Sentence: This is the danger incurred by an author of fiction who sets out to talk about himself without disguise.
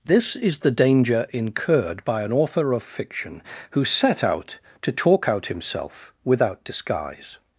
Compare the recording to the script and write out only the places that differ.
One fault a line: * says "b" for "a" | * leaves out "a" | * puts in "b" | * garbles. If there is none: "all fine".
* says "set" for "sets"
* says "out" for "about"